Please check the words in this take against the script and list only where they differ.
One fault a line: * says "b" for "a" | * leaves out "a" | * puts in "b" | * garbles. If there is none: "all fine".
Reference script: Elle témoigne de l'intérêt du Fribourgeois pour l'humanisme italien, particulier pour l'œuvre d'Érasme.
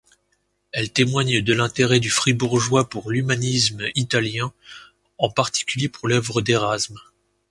* puts in "en"